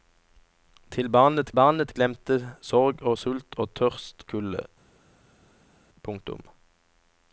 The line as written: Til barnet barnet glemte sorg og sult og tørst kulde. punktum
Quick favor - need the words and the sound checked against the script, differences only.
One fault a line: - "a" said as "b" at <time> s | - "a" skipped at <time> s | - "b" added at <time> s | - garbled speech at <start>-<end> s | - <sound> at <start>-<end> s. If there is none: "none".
none